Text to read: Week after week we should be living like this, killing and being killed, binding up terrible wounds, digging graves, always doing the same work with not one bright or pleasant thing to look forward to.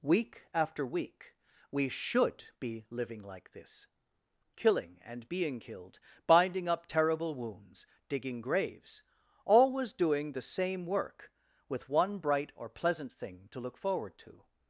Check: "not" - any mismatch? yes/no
yes